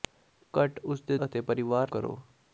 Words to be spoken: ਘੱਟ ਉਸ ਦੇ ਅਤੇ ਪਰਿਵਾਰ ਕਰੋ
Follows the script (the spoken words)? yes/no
yes